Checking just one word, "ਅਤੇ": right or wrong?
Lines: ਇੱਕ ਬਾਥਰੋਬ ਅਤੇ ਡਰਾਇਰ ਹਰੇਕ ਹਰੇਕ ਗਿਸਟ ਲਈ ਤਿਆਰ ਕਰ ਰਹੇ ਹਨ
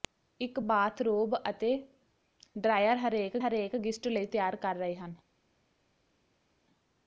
right